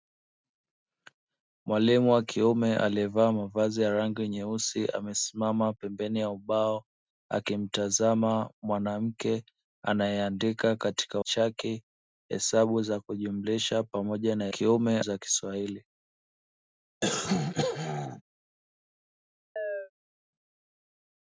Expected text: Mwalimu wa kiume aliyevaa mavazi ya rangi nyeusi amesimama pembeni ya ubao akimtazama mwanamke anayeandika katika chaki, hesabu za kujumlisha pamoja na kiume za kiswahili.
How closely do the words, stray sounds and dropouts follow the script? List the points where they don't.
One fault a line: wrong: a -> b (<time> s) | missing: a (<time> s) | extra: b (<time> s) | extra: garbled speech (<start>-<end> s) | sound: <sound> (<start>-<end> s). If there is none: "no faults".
sound: throat clearing (17.0-18.2 s)
sound: chirp (19.6-19.9 s)